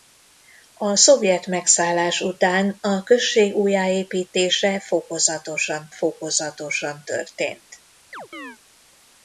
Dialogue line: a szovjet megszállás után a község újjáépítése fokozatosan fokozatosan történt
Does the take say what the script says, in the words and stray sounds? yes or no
no